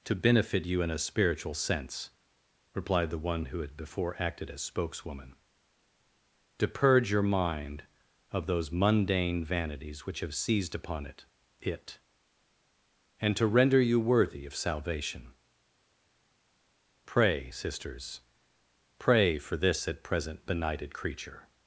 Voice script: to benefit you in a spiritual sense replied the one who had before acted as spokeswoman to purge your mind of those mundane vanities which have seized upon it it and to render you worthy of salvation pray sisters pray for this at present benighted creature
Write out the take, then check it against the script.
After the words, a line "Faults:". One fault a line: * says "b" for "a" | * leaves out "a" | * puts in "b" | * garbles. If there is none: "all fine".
to benefit you in a spiritual sense replied the one who had before acted as spokeswoman to purge your mind of those mundane vanities which have seized upon it it and to render you worthy of salvation pray sisters pray for this at present benighted creature
Faults:
all fine